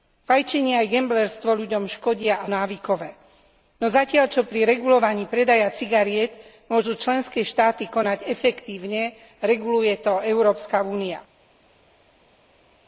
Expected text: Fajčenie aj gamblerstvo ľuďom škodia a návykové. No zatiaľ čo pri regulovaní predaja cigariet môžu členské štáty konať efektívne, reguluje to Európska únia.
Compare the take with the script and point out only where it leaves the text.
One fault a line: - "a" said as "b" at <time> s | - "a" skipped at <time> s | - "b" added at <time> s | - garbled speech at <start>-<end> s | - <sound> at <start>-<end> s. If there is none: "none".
none